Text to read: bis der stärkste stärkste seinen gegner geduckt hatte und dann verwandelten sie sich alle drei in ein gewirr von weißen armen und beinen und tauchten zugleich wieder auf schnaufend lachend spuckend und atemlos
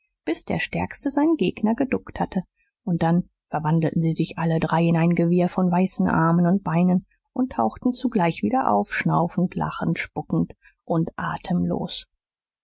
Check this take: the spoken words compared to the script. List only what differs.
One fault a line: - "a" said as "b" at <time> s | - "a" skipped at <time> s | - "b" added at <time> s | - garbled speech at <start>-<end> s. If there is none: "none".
- "stärkste" skipped at 1.1 s